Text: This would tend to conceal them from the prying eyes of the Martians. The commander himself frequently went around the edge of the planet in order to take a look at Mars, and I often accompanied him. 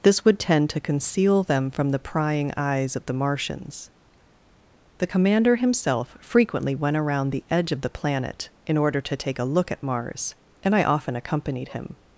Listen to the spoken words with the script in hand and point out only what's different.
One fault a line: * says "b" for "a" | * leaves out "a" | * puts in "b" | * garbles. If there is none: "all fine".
all fine